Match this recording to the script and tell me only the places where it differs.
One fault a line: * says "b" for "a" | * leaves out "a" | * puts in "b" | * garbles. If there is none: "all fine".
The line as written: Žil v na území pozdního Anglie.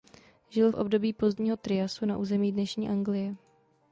* puts in "období pozdního Triasu"
* says "dnešní" for "pozdního"